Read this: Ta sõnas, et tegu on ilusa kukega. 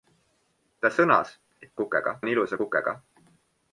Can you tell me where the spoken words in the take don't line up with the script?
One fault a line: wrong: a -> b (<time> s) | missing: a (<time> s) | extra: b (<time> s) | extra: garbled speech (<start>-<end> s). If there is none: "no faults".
wrong: tegu -> kukega (1.8 s)